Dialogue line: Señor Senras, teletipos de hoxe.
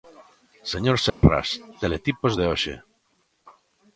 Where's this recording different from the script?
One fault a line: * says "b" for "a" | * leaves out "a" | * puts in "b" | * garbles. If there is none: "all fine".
all fine